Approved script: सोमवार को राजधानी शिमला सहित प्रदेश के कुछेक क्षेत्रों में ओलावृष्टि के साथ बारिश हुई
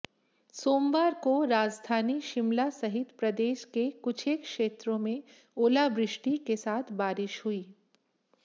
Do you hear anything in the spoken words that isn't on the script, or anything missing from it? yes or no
no